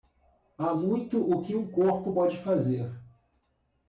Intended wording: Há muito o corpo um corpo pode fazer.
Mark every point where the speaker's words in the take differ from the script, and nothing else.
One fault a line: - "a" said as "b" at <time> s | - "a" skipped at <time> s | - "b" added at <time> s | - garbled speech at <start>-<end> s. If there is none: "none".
- "corpo" said as "que" at 1.4 s